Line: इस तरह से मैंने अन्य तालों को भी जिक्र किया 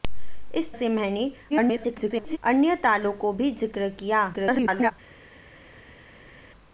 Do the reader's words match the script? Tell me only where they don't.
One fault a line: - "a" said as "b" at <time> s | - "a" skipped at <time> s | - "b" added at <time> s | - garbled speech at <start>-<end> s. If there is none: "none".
- "तरह" skipped at 0.7 s
- garbled speech at 1.5-2.4 s
- garbled speech at 4.3-4.9 s